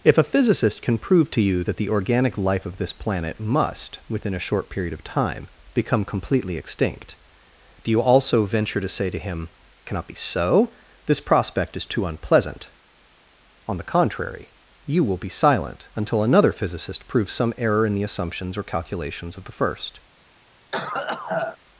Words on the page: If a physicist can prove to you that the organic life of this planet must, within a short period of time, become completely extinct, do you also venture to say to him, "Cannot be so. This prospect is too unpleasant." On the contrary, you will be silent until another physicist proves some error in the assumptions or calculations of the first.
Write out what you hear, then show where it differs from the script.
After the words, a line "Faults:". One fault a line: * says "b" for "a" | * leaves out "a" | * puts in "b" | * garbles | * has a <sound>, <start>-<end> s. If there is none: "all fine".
If a physicist can prove to you that the organic life of this planet must, within a short period of time, become completely extinct, do you also venture to say to him, "Cannot be so. This prospect is too unpleasant." On the contrary, you will be silent until another physicist proves some error in the assumptions or calculations of the first.
Faults:
* has a cough, 20.7-21.6 s